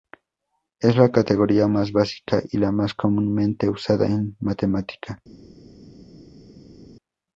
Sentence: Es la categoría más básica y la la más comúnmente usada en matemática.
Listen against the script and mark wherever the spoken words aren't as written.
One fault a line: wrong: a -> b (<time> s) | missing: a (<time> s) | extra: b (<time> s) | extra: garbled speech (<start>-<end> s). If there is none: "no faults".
missing: la (2.7 s)